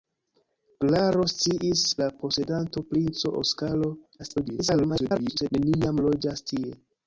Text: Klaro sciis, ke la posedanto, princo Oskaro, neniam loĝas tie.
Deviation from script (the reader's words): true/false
true